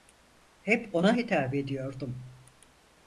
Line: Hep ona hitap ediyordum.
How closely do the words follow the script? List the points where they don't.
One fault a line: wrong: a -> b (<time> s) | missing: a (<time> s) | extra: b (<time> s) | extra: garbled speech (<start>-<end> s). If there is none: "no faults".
no faults